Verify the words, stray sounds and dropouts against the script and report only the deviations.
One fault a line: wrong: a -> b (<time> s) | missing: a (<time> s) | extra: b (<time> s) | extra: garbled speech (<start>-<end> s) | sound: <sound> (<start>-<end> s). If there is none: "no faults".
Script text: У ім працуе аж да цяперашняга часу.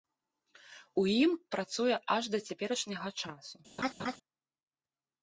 sound: laugh (3.8-4.2 s)